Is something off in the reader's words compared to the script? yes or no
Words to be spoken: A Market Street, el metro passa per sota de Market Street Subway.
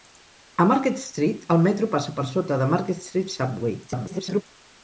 yes